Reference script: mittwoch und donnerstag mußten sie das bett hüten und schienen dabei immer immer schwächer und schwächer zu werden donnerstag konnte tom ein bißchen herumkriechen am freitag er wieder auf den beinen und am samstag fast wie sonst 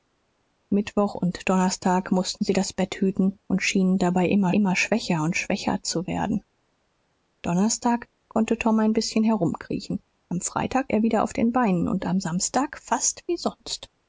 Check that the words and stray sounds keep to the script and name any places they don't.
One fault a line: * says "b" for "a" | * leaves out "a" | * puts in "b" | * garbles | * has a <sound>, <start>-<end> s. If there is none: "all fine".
all fine